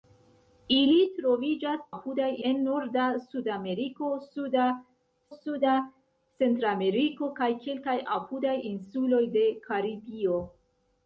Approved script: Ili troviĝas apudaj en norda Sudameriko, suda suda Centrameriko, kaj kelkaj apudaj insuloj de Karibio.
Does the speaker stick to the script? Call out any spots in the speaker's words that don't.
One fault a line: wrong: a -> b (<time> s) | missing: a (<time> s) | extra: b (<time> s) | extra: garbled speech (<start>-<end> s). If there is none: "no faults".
no faults